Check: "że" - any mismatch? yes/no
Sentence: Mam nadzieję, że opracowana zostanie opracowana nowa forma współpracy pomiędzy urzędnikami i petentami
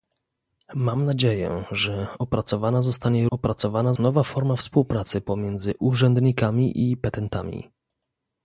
no